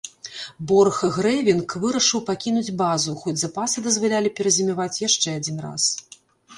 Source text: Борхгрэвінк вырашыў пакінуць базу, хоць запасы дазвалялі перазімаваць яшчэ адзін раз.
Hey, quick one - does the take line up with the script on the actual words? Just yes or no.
yes